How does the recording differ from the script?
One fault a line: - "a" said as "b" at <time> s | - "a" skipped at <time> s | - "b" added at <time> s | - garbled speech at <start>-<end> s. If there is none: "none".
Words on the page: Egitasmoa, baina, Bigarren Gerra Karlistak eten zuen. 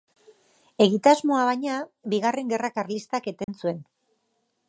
none